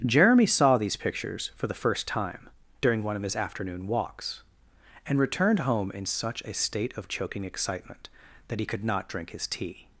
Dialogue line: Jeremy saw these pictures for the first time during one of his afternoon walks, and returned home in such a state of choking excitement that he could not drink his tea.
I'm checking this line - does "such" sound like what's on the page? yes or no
yes